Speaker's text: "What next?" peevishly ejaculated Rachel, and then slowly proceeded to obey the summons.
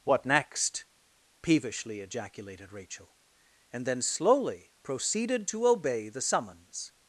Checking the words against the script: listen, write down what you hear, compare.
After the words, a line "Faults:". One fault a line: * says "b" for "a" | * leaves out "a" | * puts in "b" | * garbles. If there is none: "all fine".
"What next?" peevishly ejaculated Rachel, and then slowly proceeded to obey the summons.
Faults:
all fine